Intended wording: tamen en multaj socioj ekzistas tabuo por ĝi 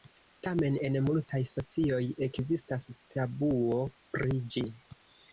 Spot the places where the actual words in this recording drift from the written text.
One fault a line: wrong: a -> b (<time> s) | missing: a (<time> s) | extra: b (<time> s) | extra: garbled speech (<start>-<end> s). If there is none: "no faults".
wrong: por -> pri (4.2 s)